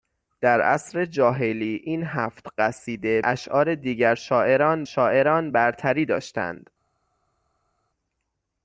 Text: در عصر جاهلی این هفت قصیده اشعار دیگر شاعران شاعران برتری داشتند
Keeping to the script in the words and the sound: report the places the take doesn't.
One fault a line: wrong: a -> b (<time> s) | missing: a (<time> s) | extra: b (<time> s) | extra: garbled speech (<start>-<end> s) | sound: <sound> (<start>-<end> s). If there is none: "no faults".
no faults